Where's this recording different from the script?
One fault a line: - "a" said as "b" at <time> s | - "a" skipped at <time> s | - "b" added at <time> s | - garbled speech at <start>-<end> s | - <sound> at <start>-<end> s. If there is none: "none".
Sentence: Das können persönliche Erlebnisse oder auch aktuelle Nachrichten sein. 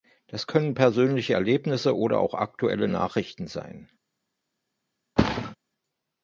- thud at 5.2-5.6 s